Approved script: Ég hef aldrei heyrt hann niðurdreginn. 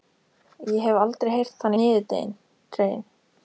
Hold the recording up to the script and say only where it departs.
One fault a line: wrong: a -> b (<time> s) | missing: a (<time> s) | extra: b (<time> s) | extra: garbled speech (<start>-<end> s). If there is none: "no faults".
no faults